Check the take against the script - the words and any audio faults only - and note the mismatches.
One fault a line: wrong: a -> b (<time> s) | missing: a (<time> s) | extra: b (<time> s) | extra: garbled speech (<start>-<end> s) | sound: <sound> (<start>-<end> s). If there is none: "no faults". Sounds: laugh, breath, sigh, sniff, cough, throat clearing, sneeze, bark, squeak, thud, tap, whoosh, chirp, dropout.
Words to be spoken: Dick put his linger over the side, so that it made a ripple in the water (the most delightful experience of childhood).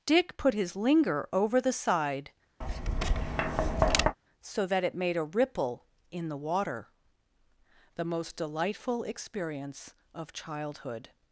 sound: tap (2.6-4.2 s)